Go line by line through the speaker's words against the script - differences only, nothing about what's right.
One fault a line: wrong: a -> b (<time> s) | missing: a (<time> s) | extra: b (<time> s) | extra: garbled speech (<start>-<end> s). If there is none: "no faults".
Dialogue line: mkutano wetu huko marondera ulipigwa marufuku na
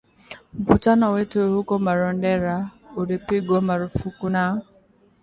no faults